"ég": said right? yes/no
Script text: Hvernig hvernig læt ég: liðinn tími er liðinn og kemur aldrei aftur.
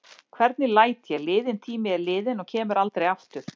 yes